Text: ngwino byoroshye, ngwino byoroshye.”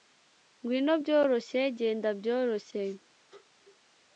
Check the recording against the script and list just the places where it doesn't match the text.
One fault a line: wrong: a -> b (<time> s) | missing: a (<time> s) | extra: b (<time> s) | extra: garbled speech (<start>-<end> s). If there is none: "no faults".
wrong: ngwino -> genda (1.8 s)